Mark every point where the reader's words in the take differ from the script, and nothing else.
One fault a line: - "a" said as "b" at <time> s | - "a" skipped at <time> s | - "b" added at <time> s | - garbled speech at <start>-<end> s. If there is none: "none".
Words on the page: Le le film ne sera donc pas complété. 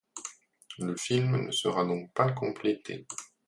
- "le" skipped at 0.9 s